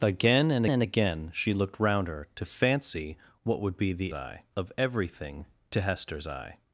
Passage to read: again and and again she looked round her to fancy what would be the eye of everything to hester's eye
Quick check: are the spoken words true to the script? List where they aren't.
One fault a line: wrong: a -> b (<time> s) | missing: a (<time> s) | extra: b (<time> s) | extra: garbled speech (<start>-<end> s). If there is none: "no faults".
no faults